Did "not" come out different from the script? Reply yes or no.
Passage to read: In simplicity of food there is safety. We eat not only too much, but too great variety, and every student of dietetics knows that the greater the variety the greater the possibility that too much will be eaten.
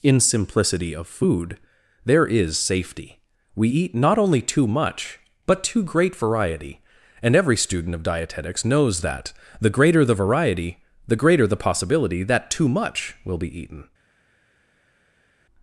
no